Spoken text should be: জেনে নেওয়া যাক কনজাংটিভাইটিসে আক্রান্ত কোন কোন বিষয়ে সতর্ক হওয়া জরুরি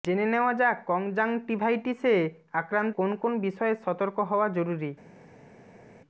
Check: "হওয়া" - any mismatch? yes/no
no